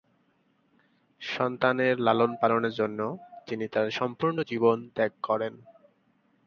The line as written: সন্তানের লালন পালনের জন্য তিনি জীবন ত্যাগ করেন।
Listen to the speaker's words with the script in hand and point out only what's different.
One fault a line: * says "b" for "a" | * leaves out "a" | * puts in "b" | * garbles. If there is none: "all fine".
* puts in "তার সম্পূর্ণ"